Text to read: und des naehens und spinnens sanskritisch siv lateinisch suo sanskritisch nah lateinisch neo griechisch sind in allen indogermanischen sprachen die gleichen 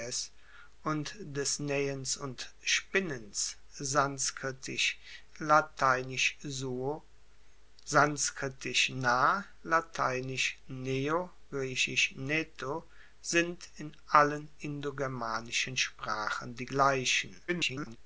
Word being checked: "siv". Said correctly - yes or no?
no